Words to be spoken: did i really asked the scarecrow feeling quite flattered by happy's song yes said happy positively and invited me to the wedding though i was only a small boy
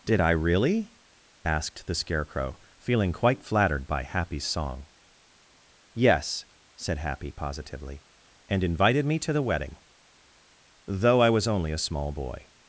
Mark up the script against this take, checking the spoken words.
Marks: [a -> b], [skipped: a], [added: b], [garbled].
did i really asked the scarecrow feeling quite flattered by happy's song yes said happy positively and invited me to the wedding though i was only a small boy